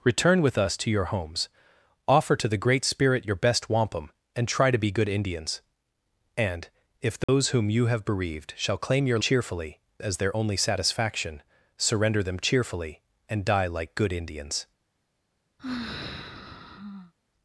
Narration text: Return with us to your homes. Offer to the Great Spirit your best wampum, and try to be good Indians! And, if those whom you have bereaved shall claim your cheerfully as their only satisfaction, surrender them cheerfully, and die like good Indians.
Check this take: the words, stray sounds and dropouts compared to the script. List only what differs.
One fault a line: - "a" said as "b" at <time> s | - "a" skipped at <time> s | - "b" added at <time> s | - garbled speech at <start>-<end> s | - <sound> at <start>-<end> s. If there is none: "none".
- dropout at 7.2-7.3 s
- sigh at 15.6-17.1 s